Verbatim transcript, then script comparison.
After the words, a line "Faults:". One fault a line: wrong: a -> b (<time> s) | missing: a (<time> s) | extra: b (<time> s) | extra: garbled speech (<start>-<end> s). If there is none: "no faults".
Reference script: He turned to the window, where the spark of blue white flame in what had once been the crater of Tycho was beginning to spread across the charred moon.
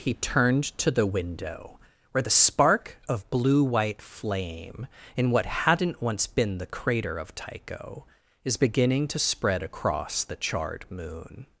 He turned to the window, where the spark of blue white flame in what hadn't once been the crater of Tycho is beginning to spread across the charred moon.
Faults:
wrong: had -> hadn't (5.5 s)
wrong: was -> is (8.4 s)